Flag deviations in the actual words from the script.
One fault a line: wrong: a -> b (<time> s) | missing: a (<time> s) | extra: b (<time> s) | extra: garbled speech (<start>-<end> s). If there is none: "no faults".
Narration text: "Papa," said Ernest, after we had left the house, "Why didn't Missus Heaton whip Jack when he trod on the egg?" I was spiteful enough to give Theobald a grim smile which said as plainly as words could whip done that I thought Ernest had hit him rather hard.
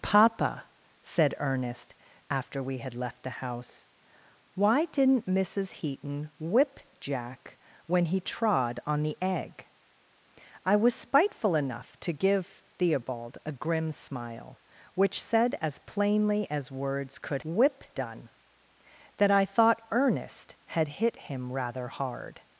no faults